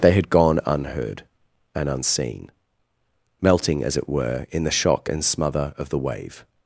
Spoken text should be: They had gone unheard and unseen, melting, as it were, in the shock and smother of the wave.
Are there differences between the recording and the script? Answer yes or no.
no